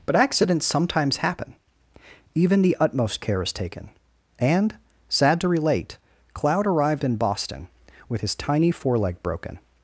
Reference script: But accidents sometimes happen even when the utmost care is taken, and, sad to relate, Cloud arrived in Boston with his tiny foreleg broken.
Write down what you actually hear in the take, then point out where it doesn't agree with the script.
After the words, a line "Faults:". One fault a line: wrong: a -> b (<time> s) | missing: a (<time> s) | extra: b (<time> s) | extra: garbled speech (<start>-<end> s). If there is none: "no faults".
But accidents sometimes happen even the utmost care is taken, and, sad to relate, Cloud arrived in Boston with his tiny foreleg broken.
Faults:
missing: when (2.6 s)